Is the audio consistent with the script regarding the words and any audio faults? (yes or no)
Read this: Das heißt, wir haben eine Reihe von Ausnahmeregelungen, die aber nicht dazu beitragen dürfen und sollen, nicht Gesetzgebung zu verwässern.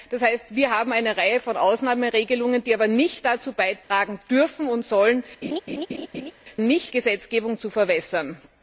no